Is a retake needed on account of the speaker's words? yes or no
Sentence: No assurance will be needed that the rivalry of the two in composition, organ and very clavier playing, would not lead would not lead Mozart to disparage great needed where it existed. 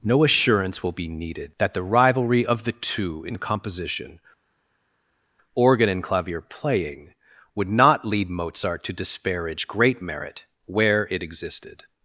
yes